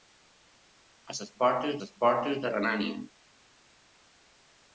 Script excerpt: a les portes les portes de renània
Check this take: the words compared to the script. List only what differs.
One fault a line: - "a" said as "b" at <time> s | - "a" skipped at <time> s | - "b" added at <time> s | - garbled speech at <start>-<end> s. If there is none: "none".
none